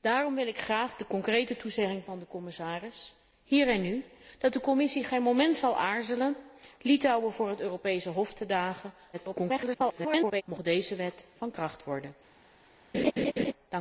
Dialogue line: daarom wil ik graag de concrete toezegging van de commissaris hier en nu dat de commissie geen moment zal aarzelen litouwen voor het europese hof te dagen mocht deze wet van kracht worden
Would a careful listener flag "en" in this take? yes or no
no